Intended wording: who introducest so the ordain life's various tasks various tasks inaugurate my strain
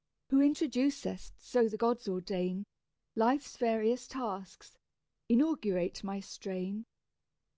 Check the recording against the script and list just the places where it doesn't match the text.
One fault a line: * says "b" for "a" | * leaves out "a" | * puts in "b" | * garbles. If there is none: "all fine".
* puts in "gods"
* leaves out "various tasks"